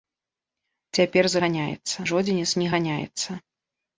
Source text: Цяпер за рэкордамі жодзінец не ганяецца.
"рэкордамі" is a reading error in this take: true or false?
true